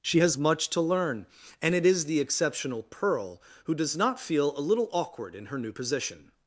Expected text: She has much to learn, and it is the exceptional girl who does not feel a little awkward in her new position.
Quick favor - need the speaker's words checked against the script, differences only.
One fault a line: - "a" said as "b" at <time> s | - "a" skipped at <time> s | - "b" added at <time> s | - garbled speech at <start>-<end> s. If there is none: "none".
- "girl" said as "pearl" at 2.8 s